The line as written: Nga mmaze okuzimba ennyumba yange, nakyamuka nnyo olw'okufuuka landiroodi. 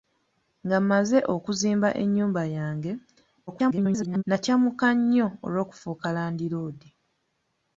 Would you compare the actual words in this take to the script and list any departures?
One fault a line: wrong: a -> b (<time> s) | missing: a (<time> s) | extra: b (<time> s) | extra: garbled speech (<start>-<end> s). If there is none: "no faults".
extra: garbled speech (3.5-4.2 s)